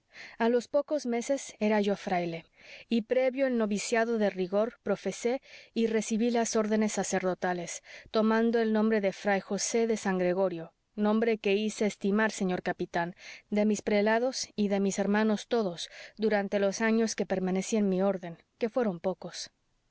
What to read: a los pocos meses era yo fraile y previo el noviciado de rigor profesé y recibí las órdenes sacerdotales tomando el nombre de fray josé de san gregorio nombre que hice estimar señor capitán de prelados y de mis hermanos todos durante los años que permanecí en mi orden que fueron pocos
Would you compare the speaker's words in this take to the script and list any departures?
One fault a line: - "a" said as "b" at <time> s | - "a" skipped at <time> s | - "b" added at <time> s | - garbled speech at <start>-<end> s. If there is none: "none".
- "mis" added at 13.6 s